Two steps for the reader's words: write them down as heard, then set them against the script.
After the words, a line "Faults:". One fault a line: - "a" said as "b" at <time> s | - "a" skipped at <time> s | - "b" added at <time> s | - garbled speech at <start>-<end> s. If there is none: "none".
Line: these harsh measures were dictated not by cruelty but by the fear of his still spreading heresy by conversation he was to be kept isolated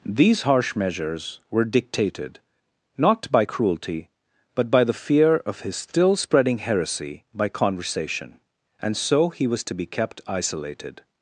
these harsh measures were dictated not by cruelty but by the fear of his still spreading heresy by conversation and so he was to be kept isolated
Faults:
- "and so" added at 8.8 s